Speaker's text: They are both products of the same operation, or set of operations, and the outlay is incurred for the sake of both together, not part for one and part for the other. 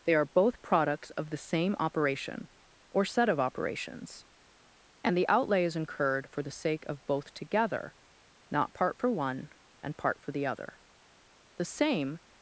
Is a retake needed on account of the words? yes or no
yes